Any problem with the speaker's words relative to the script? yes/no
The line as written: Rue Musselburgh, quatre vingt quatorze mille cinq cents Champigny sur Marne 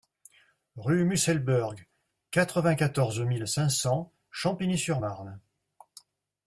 no